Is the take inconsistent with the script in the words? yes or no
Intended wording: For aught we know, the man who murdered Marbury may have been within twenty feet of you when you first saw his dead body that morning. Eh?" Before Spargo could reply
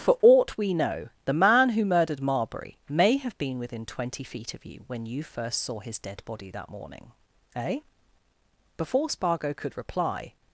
no